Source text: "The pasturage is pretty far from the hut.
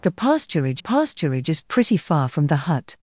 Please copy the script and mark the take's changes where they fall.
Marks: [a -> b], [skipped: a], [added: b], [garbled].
"The pasturage [added: pasturage] is pretty far from the hut.